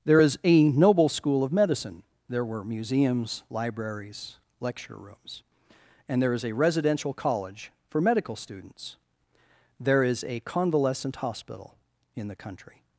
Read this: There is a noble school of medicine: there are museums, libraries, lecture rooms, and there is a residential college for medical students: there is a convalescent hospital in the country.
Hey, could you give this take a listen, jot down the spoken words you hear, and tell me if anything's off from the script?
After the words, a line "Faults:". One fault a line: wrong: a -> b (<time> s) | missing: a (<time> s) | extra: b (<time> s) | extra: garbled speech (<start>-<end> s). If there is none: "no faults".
There is a noble school of medicine: there were museums, libraries, lecture rooms, and there is a residential college for medical students: there is a convalescent hospital in the country.
Faults:
wrong: are -> were (2.5 s)